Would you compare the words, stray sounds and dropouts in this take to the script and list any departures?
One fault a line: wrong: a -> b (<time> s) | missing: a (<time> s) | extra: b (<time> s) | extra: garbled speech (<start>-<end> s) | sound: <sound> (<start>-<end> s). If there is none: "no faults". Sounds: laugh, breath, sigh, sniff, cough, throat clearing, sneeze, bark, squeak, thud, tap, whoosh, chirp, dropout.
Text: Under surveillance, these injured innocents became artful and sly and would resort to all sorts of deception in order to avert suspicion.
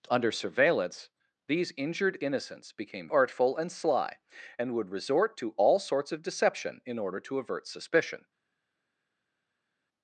no faults